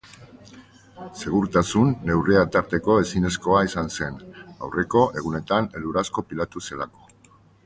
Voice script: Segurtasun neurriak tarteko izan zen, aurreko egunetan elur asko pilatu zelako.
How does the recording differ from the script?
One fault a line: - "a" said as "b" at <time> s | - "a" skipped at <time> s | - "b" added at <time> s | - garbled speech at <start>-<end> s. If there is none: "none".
- "ezinezkoa" added at 3.0 s